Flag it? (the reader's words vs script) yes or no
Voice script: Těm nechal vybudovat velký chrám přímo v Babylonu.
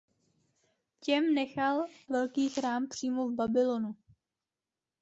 yes